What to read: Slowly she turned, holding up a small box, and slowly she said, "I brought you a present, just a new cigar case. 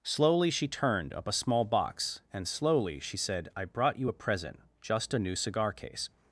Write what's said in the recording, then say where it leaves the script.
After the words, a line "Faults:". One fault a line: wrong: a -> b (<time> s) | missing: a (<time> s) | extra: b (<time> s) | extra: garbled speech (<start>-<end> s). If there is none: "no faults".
Slowly she turned, up a small box, and slowly she said, "I brought you a present, just a new cigar case.
Faults:
missing: holding (1.1 s)